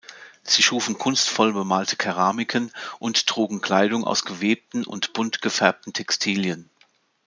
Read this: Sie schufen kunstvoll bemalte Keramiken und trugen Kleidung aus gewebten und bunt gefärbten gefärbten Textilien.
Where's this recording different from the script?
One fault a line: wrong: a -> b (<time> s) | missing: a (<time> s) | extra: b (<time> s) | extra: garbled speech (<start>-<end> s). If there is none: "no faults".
missing: gefärbten (5.9 s)